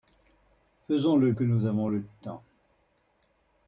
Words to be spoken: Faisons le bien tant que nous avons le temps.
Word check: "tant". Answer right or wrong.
wrong